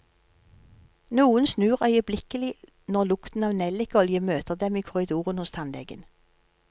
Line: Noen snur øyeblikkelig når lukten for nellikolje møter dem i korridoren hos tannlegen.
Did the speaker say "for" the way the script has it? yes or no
no